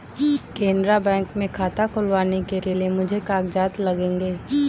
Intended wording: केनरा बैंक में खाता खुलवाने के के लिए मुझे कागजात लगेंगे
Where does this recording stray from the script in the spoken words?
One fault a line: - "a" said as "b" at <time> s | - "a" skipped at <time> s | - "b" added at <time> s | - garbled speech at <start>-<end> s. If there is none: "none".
none